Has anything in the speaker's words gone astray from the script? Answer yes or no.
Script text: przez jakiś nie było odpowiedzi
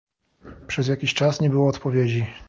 yes